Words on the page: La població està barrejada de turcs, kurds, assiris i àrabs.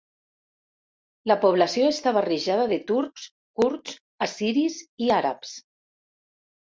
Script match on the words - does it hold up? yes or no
yes